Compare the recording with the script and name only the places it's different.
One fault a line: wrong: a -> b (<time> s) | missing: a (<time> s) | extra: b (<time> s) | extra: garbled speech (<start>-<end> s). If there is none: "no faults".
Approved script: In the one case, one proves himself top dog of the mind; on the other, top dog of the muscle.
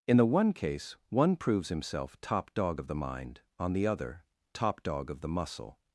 no faults